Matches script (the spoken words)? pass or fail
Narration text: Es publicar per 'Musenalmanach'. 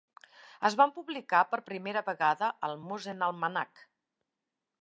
fail